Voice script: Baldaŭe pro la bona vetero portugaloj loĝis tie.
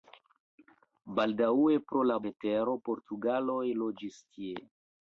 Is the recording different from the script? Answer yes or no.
yes